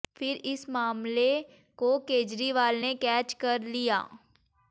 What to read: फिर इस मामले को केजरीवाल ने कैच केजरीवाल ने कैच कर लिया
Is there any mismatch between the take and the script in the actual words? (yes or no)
yes